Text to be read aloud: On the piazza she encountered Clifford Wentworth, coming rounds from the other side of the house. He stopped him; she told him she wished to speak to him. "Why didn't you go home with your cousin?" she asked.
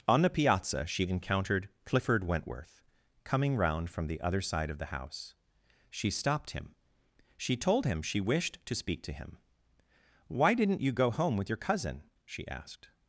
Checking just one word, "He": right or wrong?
wrong